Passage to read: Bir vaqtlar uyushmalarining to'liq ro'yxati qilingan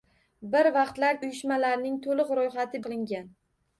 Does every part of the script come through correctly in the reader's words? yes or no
yes